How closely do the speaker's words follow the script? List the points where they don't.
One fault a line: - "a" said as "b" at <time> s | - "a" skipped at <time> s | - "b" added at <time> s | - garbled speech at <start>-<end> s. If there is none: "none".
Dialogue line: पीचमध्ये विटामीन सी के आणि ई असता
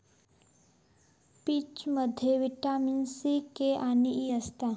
none